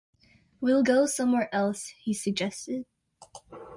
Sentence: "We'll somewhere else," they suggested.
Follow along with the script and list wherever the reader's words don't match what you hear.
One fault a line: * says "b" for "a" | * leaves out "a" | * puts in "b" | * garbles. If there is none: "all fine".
* puts in "go"
* says "he" for "they"